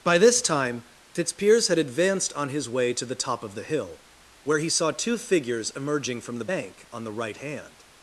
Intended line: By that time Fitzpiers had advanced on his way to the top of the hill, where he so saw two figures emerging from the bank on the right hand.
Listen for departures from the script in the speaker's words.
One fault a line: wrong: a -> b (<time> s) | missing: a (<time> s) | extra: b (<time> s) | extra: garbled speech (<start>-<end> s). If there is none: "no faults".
wrong: that -> this (0.2 s)
missing: so (4.7 s)